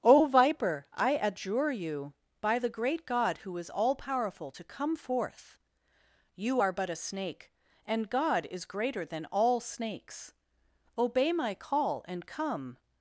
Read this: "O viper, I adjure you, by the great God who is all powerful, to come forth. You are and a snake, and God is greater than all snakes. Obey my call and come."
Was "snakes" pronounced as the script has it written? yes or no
yes